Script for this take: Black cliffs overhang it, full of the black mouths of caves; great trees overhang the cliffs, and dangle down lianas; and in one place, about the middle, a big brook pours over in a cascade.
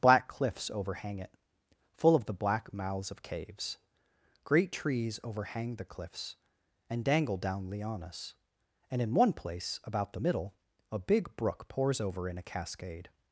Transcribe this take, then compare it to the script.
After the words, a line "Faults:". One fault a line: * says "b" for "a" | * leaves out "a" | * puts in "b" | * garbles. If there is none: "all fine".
Black cliffs overhang it, full of the black mouths of caves; great trees overhang the cliffs, and dangle down lianas; and in one place, about the middle, a big brook pours over in a cascade.
Faults:
all fine